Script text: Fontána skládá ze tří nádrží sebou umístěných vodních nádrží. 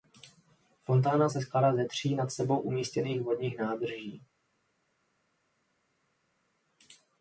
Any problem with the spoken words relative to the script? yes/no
yes